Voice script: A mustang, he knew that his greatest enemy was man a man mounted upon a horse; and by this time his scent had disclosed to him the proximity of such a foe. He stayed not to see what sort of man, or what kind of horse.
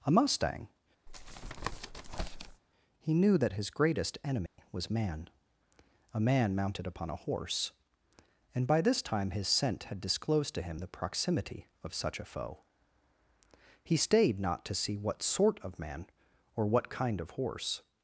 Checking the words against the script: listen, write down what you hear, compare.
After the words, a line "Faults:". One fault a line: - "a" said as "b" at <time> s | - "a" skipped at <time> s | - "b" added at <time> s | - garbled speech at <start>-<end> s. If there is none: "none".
A mustang, he knew that his greatest enemy was man a man mounted upon a horse; and by this time his scent had disclosed to him the proximity of such a foe. He stayed not to see what sort of man, or what kind of horse.
Faults:
none